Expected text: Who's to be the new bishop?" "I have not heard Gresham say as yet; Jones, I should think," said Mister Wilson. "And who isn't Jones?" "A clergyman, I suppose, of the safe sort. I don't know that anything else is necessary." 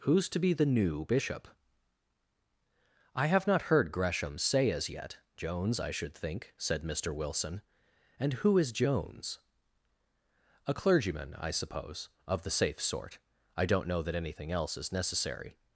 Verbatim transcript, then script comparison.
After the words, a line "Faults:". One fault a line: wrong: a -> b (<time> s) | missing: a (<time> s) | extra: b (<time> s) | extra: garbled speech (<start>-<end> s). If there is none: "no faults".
Who's to be the new bishop?" "I have not heard Gresham say as yet; Jones, I should think," said Mister Wilson. "And who is Jones?" "A clergyman, I suppose, of the safe sort. I don't know that anything else is necessary."
Faults:
wrong: isn't -> is (8.6 s)